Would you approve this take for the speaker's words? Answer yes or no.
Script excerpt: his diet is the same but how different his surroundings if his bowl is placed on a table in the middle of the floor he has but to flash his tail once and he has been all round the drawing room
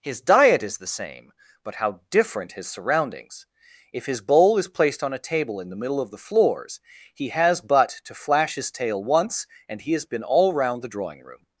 no